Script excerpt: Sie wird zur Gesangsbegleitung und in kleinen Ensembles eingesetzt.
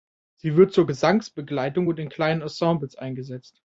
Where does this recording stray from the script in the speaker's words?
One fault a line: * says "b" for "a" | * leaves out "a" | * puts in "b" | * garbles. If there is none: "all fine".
all fine